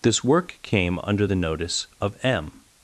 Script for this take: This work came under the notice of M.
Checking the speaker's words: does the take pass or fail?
pass